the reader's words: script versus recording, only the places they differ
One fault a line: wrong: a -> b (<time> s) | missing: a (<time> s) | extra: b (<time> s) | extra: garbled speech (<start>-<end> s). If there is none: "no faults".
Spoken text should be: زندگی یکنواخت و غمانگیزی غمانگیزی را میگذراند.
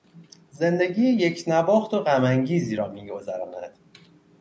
missing: غمانگیزی (2.8 s)